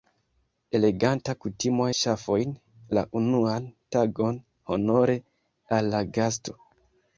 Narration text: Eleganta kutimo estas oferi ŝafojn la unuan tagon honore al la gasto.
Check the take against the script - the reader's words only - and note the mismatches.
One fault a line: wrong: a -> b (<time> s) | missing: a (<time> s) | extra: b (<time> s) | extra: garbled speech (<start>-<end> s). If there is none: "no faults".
missing: estas oferi (1.9 s)